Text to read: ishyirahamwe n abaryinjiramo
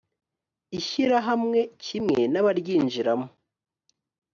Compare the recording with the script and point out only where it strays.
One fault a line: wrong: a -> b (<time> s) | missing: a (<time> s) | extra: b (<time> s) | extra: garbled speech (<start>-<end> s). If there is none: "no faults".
extra: kimwe (1.8 s)